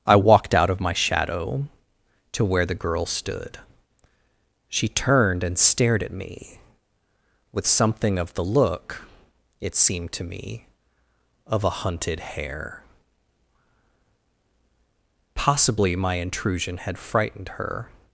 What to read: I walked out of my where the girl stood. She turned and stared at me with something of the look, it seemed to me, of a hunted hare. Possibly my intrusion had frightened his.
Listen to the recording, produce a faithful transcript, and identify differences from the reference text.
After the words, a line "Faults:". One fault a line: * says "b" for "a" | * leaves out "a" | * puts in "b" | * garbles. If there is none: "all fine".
I walked out of my shadow to where the girl stood. She turned and stared at me with something of the look, it seemed to me, of a hunted hare. Possibly my intrusion had frightened her.
Faults:
* puts in "shadow to"
* says "her" for "his"